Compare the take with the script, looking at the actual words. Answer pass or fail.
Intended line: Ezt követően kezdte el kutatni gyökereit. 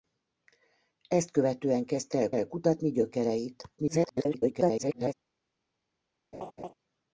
fail